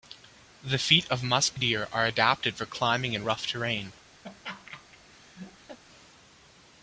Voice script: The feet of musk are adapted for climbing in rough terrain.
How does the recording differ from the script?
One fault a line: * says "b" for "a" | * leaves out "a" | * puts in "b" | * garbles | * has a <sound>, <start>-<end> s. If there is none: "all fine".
* puts in "deer"
* has a laugh, 4.2-5.8 s